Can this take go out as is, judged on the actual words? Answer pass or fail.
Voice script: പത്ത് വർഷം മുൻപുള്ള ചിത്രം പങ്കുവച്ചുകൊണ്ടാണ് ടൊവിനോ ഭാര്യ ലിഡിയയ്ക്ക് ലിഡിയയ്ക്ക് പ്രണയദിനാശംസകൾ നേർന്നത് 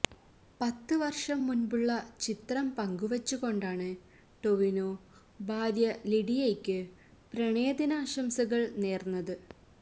fail